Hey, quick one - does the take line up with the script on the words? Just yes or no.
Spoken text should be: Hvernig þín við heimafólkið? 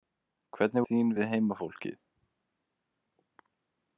yes